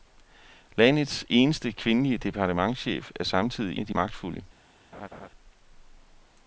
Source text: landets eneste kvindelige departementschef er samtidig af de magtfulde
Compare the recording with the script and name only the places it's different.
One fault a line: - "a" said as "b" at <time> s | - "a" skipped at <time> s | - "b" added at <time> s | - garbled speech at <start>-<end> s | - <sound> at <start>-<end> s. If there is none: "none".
- laugh at 4.9-5.3 s